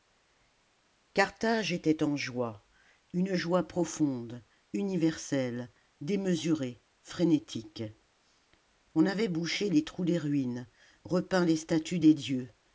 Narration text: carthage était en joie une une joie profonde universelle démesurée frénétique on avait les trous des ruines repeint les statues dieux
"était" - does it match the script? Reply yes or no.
yes